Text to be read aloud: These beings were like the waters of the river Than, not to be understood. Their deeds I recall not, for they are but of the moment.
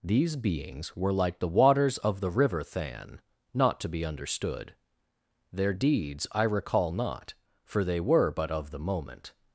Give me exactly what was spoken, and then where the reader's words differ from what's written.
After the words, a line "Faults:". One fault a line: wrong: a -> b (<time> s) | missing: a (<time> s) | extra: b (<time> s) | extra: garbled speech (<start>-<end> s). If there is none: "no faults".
These beings were like the waters of the river Than, not to be understood. Their deeds I recall not, for they were but of the moment.
Faults:
wrong: are -> were (8.0 s)